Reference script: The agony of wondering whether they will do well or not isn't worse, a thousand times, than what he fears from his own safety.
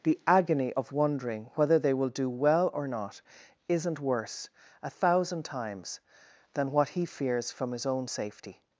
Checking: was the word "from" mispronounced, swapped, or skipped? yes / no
no